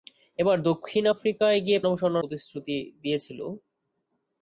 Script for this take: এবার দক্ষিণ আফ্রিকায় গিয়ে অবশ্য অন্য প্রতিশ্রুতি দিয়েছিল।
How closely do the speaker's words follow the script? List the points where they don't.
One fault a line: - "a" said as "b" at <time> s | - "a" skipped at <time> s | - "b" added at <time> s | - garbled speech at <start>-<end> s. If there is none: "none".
none